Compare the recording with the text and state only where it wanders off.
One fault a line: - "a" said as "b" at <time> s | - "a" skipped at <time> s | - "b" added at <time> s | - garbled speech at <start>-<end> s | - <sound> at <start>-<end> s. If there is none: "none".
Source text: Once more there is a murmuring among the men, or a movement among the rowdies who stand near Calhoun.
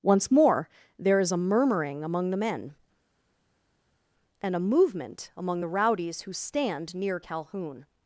- "or" said as "and" at 4.4 s